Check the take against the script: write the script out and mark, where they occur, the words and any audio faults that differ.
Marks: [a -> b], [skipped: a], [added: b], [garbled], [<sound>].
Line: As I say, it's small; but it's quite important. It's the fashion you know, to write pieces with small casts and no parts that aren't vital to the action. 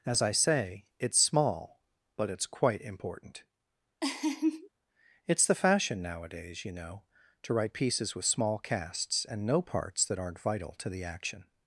As I say, it's small; but it's quite important. [laugh] It's the fashion [added: nowadays] you know, to write pieces with small casts and no parts that aren't vital to the action.